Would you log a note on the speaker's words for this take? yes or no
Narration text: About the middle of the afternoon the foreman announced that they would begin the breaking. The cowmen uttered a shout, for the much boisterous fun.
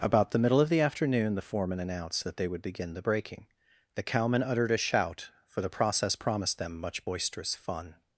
yes